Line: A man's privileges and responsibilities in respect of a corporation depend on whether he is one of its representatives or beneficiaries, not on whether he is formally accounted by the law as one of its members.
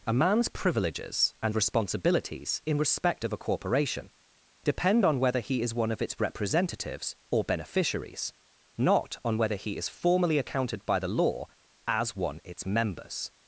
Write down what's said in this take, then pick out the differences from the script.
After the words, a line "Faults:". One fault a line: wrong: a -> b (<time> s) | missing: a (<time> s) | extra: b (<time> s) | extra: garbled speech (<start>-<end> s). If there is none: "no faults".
A man's privileges and responsibilities in respect of a corporation depend on whether he is one of its representatives or beneficiaries, not on whether he is formally accounted by the law as one its members.
Faults:
missing: of (12.4 s)